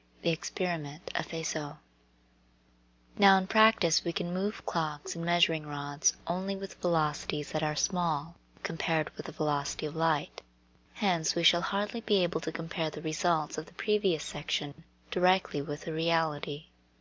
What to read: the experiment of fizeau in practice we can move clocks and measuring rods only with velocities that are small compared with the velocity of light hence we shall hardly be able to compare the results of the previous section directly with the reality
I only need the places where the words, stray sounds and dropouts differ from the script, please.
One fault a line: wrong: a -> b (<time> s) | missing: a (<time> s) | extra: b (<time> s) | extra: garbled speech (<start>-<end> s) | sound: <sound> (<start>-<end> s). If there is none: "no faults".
extra: now (3.2 s)
sound: dropout (14.7-14.8 s)